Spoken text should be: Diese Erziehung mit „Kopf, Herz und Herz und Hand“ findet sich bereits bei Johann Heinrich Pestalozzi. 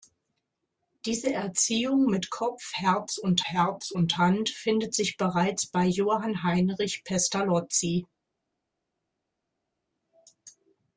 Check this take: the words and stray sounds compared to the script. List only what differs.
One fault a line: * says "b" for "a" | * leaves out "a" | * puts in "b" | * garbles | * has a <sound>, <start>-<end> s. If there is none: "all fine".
all fine